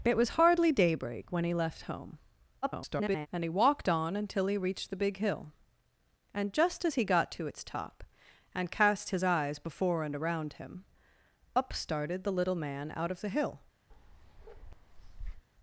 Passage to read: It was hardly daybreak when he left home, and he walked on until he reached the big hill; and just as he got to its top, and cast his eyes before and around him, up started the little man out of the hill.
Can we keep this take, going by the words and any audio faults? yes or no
no